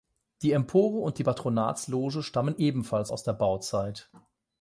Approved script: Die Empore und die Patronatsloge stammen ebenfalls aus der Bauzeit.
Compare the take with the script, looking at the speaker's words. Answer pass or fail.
pass